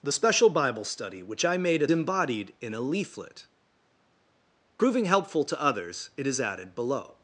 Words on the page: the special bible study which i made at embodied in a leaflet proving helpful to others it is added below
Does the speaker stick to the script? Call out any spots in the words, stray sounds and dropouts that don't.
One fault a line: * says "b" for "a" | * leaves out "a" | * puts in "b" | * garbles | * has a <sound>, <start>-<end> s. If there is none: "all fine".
all fine